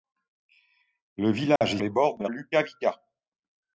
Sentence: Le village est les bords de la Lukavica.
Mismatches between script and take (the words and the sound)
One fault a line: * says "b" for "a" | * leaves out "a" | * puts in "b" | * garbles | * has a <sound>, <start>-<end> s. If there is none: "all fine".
* has a dropout, 1.6-1.6 s